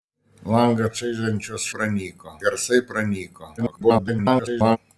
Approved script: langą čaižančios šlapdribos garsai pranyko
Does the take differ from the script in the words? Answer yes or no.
yes